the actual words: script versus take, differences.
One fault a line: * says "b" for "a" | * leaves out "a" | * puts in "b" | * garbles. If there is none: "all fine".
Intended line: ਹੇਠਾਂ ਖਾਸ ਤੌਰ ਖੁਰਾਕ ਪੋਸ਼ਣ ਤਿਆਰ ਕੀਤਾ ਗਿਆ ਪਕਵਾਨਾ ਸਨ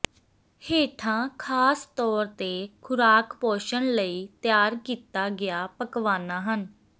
* puts in "ਤੇ"
* puts in "ਲਈ"
* says "ਹਨ" for "ਸਨ"